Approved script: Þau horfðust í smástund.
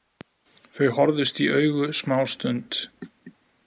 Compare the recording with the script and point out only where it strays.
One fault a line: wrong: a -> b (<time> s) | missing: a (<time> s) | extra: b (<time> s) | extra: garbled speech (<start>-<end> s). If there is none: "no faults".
extra: augu (1.6 s)